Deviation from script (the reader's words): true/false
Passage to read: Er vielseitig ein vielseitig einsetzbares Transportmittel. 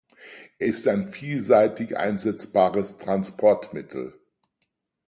true